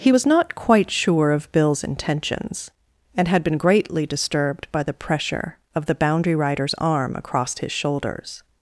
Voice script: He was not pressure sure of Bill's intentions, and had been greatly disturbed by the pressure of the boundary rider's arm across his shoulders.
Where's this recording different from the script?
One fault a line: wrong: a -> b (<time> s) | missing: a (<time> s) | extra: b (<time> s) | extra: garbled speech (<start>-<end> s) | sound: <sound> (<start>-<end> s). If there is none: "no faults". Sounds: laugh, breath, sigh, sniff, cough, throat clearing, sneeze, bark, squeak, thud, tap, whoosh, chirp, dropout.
wrong: pressure -> quite (0.5 s)